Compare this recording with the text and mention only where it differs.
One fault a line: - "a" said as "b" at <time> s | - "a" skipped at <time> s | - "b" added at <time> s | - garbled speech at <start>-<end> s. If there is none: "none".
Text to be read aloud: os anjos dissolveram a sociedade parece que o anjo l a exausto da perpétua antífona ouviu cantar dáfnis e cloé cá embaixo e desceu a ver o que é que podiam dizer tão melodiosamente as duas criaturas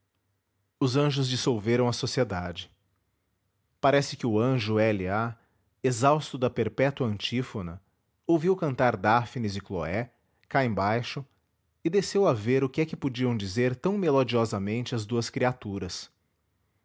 none